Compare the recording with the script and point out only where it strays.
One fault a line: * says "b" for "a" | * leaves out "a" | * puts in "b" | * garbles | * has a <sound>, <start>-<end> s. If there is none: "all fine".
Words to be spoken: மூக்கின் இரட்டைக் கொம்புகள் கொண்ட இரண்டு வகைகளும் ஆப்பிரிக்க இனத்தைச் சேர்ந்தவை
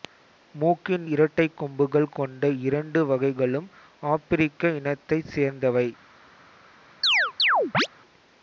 * has a chirp, 7.0-7.9 s